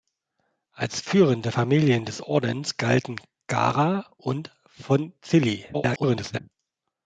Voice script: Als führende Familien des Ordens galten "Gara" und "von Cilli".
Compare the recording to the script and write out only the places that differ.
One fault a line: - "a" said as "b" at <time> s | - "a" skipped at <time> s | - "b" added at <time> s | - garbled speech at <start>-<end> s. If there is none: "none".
- garbled speech at 5.7-6.4 s